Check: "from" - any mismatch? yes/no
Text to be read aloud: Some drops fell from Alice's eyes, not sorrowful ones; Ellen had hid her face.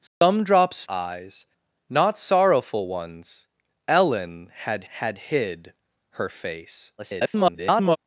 yes